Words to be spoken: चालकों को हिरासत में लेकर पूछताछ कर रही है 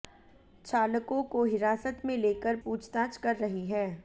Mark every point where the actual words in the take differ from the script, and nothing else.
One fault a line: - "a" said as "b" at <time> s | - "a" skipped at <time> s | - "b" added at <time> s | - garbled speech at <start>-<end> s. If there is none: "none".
none